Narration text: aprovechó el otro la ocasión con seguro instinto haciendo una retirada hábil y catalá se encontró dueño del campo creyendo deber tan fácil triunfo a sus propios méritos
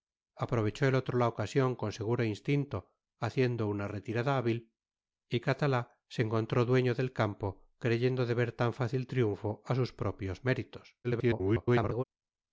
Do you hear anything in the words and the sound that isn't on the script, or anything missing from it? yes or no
yes